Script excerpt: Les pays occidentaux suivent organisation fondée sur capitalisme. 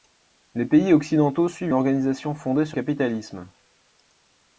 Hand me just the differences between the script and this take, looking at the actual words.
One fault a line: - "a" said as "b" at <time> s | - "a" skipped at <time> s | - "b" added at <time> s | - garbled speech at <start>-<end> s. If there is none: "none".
none